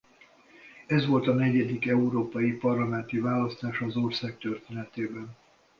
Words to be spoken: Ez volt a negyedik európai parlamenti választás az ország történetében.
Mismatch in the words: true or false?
false